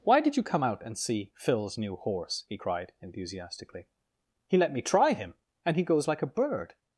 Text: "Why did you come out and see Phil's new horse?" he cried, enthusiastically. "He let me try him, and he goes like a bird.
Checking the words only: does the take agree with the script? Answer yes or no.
yes